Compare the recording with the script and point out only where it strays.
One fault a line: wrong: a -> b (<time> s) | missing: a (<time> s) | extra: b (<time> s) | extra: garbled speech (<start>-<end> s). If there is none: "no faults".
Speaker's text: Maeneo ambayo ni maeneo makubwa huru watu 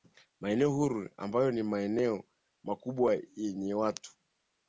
extra: huru (0.7 s)
wrong: huru -> yenye (3.4 s)